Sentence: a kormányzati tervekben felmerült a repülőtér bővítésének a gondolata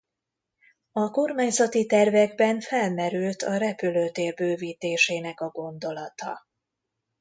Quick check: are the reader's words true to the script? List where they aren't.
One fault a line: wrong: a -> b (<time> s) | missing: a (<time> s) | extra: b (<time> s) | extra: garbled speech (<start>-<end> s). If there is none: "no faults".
no faults